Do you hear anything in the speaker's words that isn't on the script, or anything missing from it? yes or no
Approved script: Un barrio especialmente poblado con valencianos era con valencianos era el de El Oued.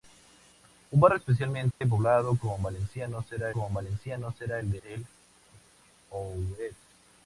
no